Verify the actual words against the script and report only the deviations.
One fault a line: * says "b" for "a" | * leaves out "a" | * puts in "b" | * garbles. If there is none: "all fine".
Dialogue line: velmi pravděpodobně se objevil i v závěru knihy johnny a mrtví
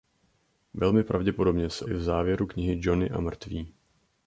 * leaves out "objevil"